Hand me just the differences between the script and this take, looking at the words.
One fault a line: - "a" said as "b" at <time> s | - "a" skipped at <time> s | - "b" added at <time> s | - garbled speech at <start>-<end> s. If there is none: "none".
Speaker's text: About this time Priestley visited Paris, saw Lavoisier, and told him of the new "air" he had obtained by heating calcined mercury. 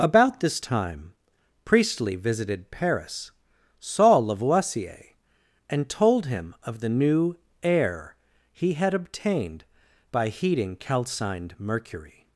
none